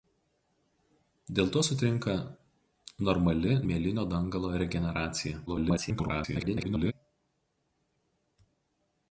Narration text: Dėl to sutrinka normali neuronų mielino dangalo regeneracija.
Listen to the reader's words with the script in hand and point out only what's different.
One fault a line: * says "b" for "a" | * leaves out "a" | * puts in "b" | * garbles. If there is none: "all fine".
* leaves out "neuronų"
* garbles